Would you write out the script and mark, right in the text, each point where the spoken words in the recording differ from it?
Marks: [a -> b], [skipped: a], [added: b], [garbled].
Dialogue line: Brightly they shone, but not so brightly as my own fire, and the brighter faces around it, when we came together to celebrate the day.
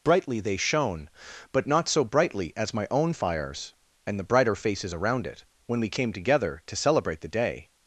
Brightly they shone, but not so brightly as my own [fire, -> fires] and the brighter faces around it, when we came together to celebrate the day.